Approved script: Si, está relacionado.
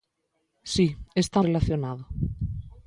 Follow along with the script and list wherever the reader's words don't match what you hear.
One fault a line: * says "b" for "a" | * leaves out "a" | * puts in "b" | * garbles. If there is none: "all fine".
all fine